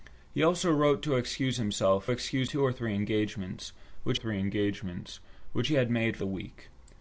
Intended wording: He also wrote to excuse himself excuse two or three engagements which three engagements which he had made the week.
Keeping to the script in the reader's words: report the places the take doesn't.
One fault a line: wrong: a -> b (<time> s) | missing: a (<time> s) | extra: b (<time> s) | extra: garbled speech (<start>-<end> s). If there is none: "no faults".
no faults